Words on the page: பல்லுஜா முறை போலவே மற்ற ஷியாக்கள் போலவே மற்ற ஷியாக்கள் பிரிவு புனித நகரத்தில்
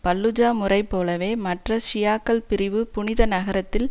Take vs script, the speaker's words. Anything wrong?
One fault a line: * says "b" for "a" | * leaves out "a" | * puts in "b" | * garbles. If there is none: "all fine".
* leaves out "போலவே மற்ற ஷியாக்கள்"